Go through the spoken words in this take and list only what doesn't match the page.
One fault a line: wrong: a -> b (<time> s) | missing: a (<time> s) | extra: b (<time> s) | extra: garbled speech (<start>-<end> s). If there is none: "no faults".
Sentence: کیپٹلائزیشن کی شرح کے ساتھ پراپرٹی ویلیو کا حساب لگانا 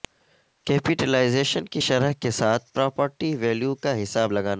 no faults